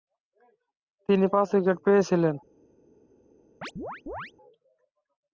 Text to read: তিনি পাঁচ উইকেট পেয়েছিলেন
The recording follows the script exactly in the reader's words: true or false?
true